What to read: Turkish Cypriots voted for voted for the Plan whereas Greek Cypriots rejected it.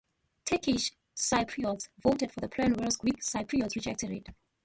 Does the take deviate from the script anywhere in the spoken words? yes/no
yes